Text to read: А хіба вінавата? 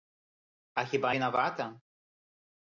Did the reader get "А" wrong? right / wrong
right